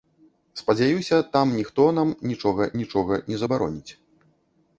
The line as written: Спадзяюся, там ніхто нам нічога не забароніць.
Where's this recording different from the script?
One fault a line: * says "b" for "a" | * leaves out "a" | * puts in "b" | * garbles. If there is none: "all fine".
* puts in "нічога"